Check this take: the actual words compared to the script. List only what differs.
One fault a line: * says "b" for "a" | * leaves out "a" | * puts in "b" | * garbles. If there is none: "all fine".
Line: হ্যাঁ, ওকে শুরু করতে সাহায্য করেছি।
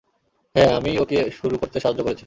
* puts in "আমিই"